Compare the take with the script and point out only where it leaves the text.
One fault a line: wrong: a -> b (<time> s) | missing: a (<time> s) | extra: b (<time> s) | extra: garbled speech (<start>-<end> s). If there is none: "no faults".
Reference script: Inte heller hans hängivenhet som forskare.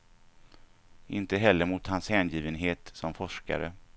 extra: mot (1.6 s)